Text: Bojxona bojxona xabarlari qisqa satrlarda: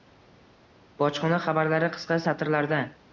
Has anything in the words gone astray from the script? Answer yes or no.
yes